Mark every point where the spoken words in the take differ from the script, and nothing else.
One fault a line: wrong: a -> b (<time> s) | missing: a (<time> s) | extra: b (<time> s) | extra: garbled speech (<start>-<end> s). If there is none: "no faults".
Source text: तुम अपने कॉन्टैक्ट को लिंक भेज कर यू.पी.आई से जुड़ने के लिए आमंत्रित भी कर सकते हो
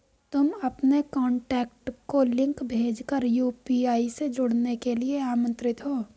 missing: भी कर सकते (5.8 s)